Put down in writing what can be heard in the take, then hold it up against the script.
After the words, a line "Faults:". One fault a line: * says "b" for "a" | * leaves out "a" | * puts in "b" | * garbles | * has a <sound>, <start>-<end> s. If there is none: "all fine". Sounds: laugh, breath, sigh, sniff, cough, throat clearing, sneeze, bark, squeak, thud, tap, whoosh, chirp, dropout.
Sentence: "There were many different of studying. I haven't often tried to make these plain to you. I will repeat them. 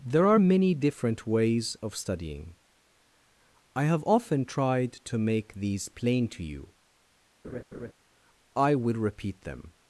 "There are many different ways of studying. I have often tried to make these plain to you. I will repeat them.
Faults:
* says "are" for "were"
* puts in "ways"
* says "have" for "haven't"
* has a laugh, 7.4-7.9 s